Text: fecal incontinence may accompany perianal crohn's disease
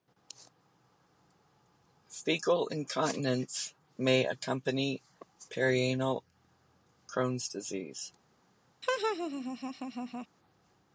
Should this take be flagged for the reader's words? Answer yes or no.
no